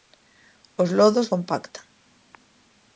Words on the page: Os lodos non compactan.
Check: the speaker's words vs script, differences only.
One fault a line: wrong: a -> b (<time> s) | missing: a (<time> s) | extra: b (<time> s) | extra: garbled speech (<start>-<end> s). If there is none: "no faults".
missing: non (1.3 s)